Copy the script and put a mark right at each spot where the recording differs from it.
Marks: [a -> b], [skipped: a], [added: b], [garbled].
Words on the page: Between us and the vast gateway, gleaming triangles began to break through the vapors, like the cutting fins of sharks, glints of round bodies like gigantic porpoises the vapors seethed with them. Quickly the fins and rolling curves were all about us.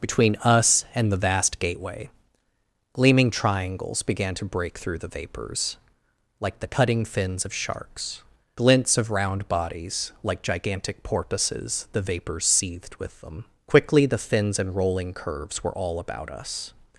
Between us and the vast gateway, gleaming triangles began to break through the vapors, like the cutting fins of sharks, glints of round bodies like gigantic porpoises the vapors seethed with them. Quickly the fins and rolling curves were all about us.